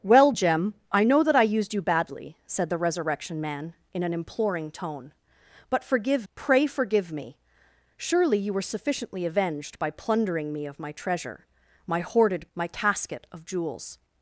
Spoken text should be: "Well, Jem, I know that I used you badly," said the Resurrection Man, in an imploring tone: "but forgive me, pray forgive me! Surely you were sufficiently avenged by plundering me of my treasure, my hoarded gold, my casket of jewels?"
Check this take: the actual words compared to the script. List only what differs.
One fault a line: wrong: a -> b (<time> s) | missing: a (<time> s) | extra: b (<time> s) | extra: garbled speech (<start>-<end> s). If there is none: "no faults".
missing: me (6.3 s)
missing: gold (12.5 s)